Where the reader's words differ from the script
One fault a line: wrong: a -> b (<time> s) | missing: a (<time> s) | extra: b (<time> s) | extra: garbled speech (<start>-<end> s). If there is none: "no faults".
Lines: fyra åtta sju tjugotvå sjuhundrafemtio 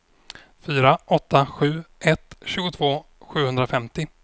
extra: ett (2.0 s)